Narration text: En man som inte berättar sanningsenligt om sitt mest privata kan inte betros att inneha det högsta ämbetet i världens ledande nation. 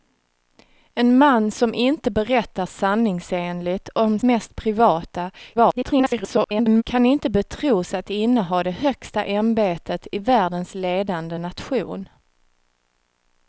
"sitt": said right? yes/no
no